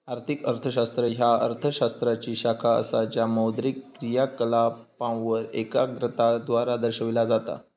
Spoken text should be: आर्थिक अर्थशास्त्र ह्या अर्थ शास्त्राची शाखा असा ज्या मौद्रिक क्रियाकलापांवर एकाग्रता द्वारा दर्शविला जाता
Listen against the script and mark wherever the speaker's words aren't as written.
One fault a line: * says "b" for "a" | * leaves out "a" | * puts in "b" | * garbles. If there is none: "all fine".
all fine